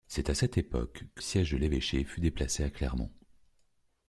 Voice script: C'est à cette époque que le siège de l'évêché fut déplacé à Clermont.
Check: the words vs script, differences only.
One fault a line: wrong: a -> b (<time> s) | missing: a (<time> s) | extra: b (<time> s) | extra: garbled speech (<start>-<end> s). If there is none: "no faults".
missing: le (1.2 s)